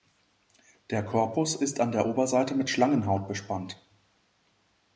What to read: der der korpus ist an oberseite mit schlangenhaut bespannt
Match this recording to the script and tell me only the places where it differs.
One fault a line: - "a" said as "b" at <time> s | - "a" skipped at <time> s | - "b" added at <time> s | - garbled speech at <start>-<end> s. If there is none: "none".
- "der" skipped at 1.1 s
- "der" added at 1.9 s